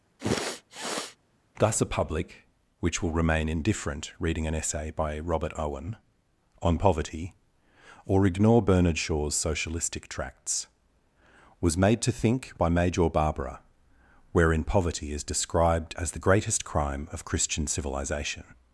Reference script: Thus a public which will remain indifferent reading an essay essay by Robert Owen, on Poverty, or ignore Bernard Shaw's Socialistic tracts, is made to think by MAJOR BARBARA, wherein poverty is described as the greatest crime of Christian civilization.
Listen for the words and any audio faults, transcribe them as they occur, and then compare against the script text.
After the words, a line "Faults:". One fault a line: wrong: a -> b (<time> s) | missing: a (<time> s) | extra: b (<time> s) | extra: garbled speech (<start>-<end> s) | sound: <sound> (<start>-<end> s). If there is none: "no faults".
Thus a public which will remain indifferent reading an essay by Robert Owen, on Poverty, or ignore Bernard Shaw's Socialistic tracts, was made to think by MAJOR BARBARA, wherein poverty is described as the greatest crime of Christian civilization.
Faults:
sound: sniff (0.2-1.2 s)
missing: essay (4.9 s)
wrong: is -> was (11.6 s)